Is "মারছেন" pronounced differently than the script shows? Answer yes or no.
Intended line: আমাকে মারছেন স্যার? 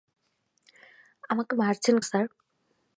no